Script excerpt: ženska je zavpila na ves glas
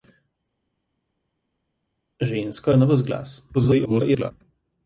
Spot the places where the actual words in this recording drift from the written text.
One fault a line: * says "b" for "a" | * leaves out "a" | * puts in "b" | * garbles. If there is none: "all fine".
* leaves out "je zavpila"
* garbles